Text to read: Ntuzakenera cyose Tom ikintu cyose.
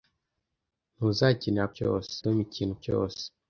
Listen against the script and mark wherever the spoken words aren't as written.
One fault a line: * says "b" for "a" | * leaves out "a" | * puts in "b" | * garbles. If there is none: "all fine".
all fine